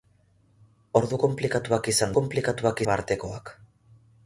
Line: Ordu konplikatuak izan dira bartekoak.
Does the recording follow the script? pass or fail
fail